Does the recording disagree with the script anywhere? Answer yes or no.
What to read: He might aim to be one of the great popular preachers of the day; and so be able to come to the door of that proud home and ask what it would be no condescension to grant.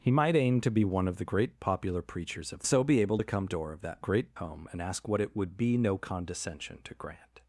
yes